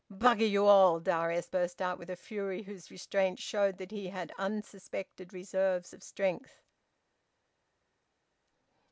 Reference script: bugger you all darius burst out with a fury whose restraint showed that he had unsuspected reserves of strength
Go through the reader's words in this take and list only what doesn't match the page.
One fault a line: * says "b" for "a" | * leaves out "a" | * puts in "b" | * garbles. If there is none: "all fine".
all fine